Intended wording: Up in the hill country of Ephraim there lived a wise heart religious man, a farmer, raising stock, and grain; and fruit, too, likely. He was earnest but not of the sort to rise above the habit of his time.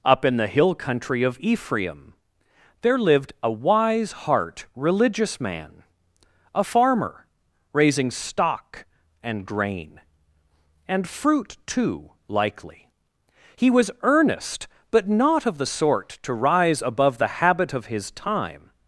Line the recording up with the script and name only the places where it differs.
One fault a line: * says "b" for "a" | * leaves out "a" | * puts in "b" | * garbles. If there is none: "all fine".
all fine